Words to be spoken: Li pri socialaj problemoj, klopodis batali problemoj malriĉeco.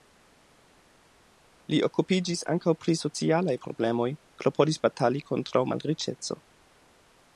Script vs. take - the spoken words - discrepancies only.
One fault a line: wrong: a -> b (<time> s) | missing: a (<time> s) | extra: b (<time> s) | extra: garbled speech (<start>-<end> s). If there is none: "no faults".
extra: okupiĝis ankaŭ (1.9 s)
wrong: problemoj -> kontraŭ (5.3 s)